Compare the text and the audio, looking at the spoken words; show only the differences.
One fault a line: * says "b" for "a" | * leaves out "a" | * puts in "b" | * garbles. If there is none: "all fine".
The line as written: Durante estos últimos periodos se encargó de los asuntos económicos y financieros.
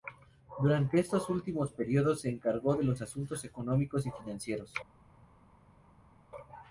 all fine